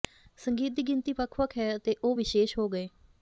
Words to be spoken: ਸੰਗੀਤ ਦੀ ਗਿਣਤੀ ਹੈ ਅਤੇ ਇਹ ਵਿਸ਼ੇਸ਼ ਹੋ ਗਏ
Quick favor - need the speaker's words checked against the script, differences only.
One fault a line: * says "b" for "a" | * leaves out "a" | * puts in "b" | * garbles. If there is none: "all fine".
* puts in "ਵੱਖ ਵੱਖ"
* says "ਉਹ" for "ਇਹ"